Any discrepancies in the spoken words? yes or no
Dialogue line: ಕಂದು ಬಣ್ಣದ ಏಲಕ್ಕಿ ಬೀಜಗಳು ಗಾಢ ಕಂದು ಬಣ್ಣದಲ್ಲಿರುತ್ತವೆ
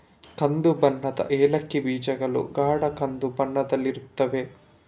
no